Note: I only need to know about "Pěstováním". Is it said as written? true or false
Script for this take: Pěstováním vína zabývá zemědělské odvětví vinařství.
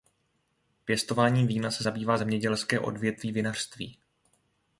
true